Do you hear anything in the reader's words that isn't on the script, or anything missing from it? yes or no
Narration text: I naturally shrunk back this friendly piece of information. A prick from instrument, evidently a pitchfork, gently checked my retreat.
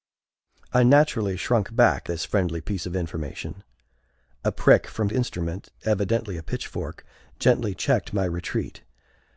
no